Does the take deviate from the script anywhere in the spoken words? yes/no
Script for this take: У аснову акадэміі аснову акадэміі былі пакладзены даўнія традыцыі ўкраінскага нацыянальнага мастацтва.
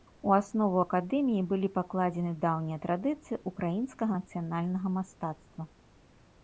yes